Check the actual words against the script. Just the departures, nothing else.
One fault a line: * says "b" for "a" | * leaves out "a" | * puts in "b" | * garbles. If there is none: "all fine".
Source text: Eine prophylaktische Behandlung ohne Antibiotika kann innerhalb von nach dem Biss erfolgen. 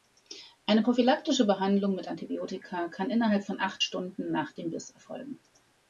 * says "mit" for "ohne"
* puts in "acht Stunden"